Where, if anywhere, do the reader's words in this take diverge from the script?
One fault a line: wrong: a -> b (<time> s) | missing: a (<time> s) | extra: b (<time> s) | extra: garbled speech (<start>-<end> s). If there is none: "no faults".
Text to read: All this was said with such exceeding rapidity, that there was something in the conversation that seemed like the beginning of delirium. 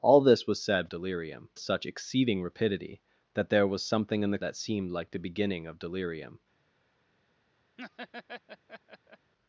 wrong: with -> delirium (0.9 s)
missing: conversation (4.4 s)